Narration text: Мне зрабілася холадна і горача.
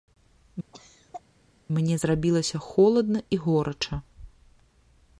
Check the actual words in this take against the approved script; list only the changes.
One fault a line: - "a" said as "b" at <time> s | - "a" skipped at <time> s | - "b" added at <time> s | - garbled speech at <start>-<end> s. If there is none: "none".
none